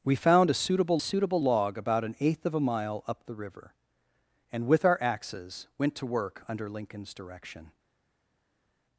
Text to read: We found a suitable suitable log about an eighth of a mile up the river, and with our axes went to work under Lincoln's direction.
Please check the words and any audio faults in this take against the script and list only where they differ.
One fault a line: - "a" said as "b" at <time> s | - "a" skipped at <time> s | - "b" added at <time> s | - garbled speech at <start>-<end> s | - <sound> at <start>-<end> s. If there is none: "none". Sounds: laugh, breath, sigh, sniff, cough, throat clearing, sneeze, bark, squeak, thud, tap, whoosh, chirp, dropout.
none